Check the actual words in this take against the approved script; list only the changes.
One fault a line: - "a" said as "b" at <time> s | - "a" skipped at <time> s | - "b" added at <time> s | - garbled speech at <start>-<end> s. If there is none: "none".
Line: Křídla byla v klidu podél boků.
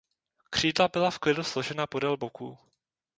- "složena" added at 1.4 s